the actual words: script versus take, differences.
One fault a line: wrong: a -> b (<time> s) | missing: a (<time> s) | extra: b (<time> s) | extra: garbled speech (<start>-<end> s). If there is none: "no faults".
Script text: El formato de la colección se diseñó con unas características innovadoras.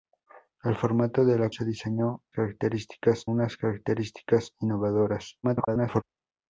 missing: colección (1.5 s)
wrong: con -> características (2.3 s)
extra: garbled speech (5.4-6.0 s)